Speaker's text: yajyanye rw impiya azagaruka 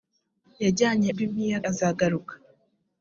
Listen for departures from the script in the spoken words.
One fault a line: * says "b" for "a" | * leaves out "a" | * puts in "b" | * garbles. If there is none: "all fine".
all fine